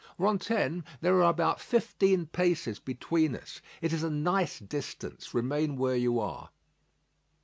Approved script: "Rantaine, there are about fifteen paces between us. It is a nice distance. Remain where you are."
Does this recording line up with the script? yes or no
yes